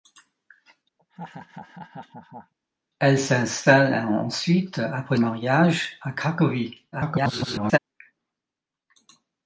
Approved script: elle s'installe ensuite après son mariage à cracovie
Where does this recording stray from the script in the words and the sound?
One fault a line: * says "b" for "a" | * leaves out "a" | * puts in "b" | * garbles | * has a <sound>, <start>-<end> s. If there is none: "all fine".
* has a laugh, 1.0-2.5 s
* leaves out "son"
* garbles